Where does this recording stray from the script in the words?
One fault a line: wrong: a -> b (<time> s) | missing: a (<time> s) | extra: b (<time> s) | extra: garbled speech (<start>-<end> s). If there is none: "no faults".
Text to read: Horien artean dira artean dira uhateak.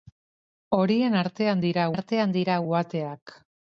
no faults